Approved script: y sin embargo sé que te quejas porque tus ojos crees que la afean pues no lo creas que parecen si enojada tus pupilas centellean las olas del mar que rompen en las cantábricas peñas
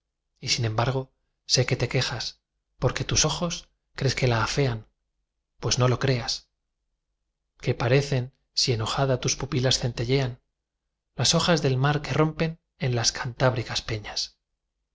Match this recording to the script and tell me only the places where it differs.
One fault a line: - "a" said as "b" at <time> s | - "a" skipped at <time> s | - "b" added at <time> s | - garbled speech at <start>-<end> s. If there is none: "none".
none